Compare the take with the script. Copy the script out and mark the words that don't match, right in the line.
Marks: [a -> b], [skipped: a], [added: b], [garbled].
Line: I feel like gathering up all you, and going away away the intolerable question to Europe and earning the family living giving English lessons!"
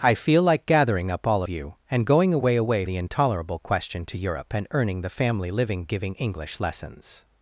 I feel like gathering up all you, and going away away the intolerable question to Europe and earning the family living giving English lessons!"